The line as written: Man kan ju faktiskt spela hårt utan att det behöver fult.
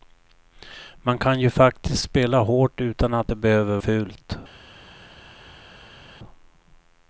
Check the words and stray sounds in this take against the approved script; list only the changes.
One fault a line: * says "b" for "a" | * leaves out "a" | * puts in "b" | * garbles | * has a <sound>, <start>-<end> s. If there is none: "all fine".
all fine